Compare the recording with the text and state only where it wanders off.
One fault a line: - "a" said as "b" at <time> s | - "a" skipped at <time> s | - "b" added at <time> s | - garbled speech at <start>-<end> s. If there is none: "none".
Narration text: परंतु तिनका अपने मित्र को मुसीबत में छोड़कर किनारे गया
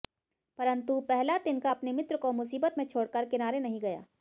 - "पहला" added at 1.0 s
- "नहीं" added at 3.6 s